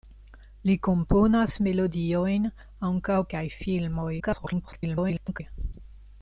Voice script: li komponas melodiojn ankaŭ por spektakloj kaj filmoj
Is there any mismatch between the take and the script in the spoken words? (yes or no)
yes